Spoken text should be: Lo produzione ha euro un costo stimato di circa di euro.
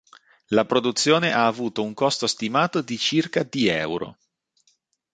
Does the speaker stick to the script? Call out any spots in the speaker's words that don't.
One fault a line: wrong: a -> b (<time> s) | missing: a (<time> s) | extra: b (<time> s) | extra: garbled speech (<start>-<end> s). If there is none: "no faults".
wrong: Lo -> La (0.5 s)
wrong: euro -> avuto (1.4 s)